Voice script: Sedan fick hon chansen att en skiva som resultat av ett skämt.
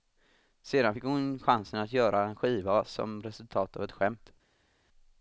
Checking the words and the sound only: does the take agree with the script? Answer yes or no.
no